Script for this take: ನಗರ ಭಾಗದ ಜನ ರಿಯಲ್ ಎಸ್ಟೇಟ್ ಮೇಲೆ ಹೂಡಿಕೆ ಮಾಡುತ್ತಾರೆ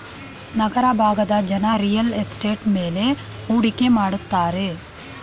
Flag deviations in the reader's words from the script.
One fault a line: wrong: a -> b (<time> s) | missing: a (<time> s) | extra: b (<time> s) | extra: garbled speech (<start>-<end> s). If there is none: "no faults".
no faults